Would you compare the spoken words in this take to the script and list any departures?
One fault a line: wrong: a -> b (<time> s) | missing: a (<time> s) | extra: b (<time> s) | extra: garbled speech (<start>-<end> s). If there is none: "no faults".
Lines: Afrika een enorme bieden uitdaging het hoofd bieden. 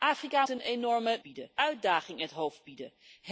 no faults